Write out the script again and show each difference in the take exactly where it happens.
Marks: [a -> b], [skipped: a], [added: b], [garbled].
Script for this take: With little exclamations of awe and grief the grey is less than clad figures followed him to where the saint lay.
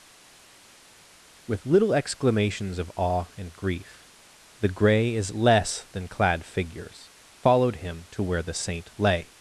With little exclamations of awe and grief the grey is less than clad figures followed him to where the saint lay.